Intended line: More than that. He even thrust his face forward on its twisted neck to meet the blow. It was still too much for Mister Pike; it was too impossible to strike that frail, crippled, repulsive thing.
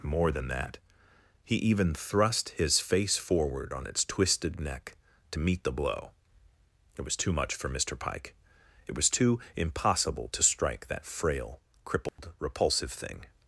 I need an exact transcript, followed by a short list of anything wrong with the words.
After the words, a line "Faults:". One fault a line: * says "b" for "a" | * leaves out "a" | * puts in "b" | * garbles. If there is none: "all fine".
More than that. He even thrust his face forward on its twisted neck to meet the blow. It was too much for Mister Pike; it was too impossible to strike that frail, crippled, repulsive thing.
Faults:
* leaves out "still"